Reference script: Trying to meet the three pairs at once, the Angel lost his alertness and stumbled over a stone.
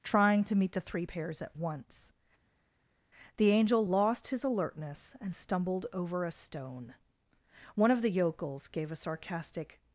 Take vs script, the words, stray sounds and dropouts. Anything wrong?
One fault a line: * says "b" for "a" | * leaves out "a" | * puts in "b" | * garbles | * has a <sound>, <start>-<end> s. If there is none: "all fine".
* puts in "One of the yokels gave a sarcastic"